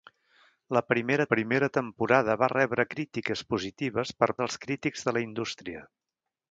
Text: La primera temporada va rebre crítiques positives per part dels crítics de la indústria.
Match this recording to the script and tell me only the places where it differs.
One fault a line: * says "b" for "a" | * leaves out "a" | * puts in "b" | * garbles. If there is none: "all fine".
* puts in "primera"
* leaves out "part"